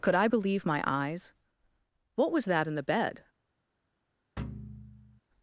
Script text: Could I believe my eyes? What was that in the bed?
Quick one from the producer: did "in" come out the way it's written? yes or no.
yes